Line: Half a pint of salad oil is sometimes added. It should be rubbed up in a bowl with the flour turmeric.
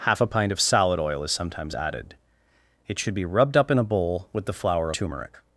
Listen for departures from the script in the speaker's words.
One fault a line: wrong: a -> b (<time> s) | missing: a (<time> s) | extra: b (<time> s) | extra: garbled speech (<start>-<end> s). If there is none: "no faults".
no faults